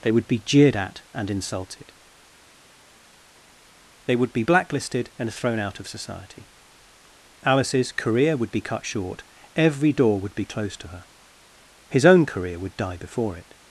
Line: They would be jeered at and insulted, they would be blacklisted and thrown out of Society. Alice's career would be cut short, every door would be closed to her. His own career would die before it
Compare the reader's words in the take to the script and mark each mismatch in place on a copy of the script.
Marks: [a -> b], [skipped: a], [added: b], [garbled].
They would be jeered at and insulted, they would be blacklisted and thrown out of Society. Alice's career would be cut short, every door would be closed to her. His own career would die before it